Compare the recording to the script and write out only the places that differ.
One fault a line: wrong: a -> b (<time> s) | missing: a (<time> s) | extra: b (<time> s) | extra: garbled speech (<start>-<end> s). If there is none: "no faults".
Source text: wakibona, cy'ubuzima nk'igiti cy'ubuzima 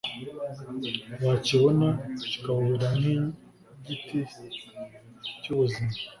wrong: cy'ubuzima -> kikawubera (2.3 s)